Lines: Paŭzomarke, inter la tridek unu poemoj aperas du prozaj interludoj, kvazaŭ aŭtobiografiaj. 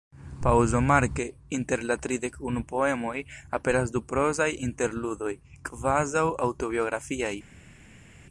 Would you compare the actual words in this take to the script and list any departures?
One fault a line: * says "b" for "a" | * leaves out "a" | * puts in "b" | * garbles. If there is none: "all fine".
all fine